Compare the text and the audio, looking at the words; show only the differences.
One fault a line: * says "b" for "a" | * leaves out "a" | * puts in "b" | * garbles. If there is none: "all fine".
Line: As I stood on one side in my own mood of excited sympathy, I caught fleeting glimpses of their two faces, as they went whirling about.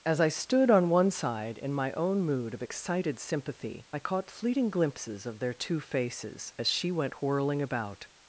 * says "she" for "they"